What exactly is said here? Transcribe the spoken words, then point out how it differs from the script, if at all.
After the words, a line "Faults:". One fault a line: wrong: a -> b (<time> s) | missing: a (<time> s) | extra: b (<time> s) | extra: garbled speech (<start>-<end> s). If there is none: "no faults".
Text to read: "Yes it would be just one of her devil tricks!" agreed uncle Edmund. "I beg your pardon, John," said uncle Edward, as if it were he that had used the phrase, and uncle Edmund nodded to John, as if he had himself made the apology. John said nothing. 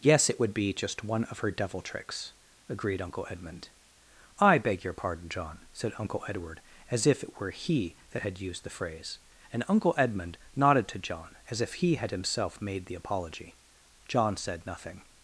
"Yes it would be just one of her devil tricks!" agreed uncle Edmund. "I beg your pardon, John," said uncle Edward, as if it were he that had used the phrase, and uncle Edmund nodded to John, as if he had himself made the apology. John said nothing.
Faults:
no faults